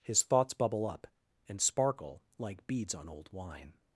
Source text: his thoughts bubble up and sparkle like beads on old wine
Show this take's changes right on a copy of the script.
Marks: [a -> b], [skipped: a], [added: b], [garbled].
his thoughts bubble up and sparkle like beads on old wine